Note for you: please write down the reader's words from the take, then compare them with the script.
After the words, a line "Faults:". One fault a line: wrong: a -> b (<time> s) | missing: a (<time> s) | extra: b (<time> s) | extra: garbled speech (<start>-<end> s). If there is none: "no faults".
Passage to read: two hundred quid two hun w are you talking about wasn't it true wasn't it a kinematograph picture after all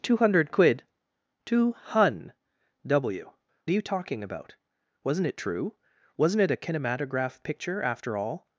two hundred quid two hun w are you talking about wasn't it true wasn't it a kinematograph picture after all
Faults:
no faults